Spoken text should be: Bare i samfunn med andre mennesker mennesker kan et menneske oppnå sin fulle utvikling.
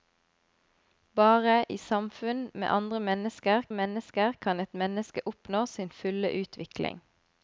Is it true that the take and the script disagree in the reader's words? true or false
false